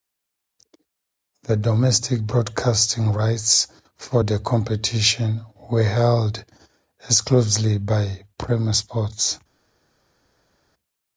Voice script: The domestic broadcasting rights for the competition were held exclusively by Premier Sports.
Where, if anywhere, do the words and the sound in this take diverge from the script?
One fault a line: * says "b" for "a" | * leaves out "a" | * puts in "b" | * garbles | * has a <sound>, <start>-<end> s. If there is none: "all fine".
all fine